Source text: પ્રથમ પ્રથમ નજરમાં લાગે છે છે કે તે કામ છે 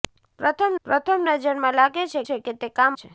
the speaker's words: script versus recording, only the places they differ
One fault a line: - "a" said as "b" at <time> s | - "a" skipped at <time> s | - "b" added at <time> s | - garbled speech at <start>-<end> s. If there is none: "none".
none